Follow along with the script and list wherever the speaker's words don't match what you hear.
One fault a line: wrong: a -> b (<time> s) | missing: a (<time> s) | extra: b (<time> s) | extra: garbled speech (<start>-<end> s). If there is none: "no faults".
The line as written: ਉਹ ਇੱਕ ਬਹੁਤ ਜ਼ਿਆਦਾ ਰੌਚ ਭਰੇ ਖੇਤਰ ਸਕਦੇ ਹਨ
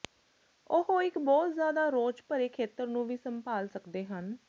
extra: ਨੂੰ ਵੀ ਸੰਭਾਲ (2.9 s)